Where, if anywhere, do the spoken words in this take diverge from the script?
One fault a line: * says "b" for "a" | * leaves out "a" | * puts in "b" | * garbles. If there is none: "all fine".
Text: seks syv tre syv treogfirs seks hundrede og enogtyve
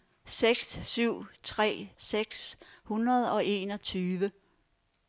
* leaves out "syv treogfirs"